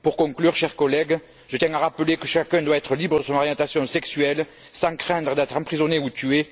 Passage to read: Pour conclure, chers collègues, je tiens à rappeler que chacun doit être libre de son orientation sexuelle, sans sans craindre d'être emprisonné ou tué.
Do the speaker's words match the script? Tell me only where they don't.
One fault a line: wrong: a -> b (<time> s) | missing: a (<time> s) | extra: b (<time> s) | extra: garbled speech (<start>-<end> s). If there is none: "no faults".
missing: sans (4.9 s)